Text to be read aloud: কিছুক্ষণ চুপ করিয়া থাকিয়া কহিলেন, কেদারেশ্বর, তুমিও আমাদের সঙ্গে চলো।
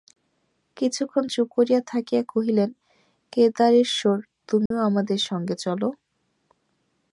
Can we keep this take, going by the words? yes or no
yes